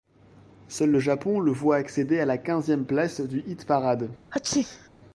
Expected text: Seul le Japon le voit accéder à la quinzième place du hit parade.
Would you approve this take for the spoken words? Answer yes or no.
yes